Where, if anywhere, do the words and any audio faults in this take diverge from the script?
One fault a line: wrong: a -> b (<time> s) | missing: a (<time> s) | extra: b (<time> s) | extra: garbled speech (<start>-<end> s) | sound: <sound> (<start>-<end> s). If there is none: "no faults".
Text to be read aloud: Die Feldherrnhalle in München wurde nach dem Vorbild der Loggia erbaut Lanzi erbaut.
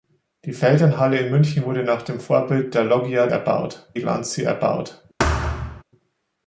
sound: thud (5.2-5.8 s)